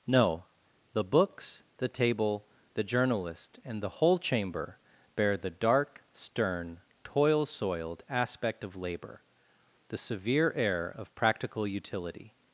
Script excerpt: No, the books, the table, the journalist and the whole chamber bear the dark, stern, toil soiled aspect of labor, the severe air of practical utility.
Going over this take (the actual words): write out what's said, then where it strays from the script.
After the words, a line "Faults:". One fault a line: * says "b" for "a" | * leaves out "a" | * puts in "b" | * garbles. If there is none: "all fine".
No, the books, the table, the journalist and the whole chamber bear the dark, stern, toil soiled aspect of labor, the severe air of practical utility.
Faults:
all fine